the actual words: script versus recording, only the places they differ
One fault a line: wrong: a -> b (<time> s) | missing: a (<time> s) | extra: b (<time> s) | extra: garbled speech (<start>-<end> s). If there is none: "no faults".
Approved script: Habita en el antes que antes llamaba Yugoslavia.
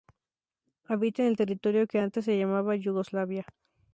wrong: antes -> territorio (1.3 s)
extra: se (2.3 s)